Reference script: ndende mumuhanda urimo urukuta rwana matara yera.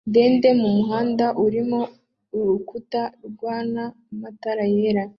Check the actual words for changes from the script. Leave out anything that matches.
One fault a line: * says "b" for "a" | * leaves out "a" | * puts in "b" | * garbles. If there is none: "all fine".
all fine